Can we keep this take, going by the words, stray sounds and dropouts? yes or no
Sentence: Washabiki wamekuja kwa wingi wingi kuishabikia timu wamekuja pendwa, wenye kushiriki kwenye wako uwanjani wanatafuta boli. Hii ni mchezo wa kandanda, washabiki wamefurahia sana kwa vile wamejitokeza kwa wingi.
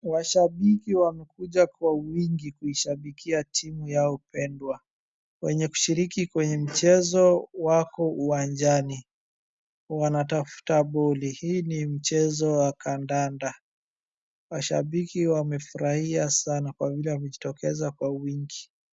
no